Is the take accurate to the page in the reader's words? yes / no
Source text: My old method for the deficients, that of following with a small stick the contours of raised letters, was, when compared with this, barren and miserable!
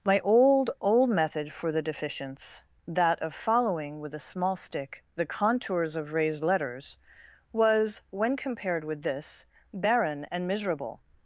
no